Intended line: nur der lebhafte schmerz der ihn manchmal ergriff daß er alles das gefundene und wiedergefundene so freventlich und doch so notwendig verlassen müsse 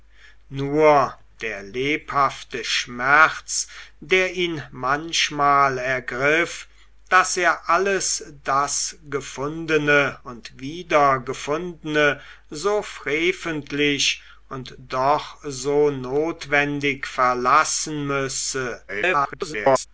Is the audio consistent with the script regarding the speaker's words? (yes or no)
no